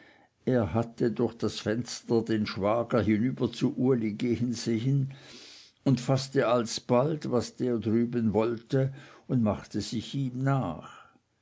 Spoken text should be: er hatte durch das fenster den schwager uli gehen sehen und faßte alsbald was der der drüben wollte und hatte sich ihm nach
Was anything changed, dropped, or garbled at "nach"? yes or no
no